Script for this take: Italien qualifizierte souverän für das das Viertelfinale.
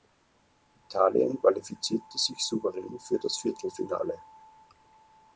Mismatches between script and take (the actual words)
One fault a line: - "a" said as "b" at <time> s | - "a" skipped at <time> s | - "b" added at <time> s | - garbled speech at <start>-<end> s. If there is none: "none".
- "sich" added at 2.2 s
- "das" skipped at 3.4 s